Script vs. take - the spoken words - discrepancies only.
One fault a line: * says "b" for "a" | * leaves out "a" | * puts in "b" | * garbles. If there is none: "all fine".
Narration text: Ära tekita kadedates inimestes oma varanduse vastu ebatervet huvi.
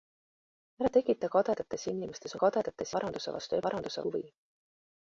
* says "kadedates" for "oma"
* says "varanduse" for "ebatervet"